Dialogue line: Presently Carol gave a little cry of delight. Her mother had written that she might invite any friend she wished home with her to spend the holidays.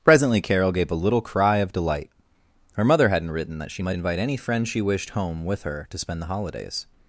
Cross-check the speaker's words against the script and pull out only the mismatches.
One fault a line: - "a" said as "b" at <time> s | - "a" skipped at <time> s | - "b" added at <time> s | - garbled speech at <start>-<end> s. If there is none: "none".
- "had" said as "hadn't" at 3.1 s